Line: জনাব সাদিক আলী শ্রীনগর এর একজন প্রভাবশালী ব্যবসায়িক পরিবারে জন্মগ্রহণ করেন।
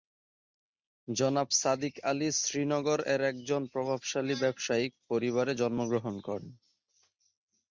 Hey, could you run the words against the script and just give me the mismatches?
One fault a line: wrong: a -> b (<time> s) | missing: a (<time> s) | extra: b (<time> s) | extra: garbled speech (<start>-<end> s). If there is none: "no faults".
no faults